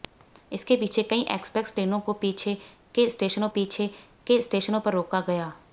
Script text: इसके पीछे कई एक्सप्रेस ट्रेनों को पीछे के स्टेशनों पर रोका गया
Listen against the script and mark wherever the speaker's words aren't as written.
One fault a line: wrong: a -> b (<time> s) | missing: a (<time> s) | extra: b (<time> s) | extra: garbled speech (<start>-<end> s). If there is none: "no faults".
extra: पीछे के स्टेशनों (3.5 s)